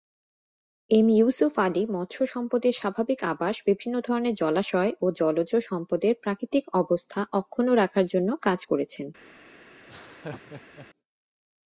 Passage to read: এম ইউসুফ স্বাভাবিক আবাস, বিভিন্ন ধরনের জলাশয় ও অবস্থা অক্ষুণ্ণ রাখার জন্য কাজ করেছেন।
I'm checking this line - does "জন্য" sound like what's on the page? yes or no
yes